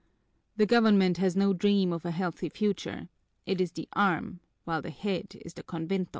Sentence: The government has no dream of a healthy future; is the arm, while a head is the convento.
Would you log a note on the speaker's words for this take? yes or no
yes